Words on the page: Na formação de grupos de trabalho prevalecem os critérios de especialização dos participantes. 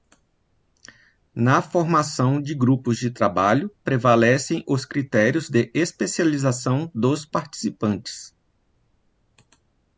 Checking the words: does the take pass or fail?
pass